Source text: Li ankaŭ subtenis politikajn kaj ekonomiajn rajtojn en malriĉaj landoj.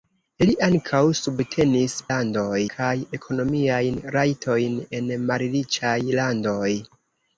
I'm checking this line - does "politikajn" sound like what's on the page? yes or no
no